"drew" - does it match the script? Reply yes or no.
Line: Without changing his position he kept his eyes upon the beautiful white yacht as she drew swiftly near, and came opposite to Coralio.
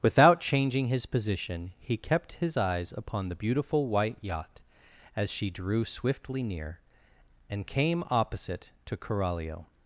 yes